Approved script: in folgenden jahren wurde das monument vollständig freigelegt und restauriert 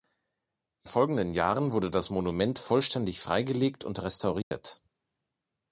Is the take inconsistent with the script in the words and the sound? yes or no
yes